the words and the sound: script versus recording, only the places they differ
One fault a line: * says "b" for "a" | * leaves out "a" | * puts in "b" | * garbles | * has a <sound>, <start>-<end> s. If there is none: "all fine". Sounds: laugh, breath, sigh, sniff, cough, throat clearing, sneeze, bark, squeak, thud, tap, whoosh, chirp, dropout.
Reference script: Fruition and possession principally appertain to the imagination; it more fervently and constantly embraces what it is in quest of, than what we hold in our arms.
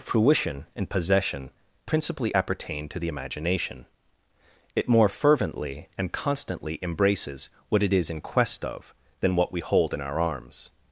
all fine